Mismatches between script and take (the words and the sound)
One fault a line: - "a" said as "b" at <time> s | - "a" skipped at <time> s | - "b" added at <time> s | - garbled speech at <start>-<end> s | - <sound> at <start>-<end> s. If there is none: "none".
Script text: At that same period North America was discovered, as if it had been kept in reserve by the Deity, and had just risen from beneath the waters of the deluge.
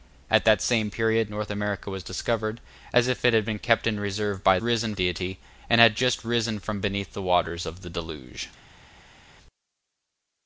- "the" said as "risen" at 4.6 s